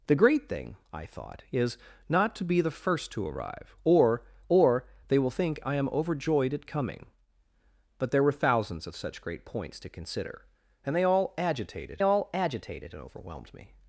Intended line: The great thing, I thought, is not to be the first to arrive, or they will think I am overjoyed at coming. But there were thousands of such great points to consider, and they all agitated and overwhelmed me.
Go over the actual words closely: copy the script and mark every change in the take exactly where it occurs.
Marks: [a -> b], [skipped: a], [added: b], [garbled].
The great thing, I thought, is not to be the first to arrive, or [added: or] they will think I am overjoyed at coming. But there were thousands of such great points to consider, and they all agitated [added: all agitated] and overwhelmed me.